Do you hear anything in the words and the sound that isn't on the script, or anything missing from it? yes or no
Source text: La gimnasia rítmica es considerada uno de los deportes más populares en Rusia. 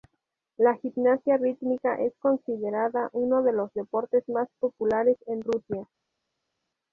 no